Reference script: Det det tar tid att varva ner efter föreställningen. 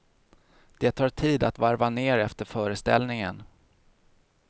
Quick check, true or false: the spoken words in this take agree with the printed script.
false